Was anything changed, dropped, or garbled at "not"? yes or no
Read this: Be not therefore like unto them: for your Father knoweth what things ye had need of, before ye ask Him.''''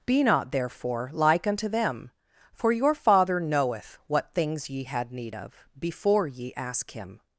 no